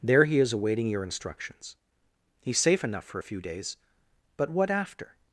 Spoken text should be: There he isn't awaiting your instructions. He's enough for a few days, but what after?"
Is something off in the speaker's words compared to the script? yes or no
yes